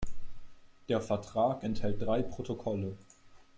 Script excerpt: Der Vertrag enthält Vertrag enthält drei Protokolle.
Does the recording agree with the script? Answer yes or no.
no